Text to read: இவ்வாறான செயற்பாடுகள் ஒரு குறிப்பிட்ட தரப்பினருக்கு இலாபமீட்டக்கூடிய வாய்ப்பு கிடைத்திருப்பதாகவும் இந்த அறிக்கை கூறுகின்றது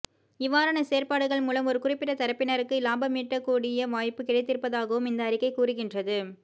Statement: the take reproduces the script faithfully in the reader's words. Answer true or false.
false